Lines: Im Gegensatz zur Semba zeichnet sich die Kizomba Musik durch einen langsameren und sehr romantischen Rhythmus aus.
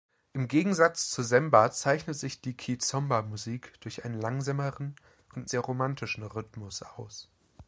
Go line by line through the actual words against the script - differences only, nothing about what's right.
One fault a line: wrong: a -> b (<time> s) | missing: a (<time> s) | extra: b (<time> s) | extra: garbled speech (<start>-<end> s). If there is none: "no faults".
no faults